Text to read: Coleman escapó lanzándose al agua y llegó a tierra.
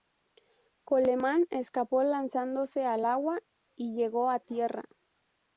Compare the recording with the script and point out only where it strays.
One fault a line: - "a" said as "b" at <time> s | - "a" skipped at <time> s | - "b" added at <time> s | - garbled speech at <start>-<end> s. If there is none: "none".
none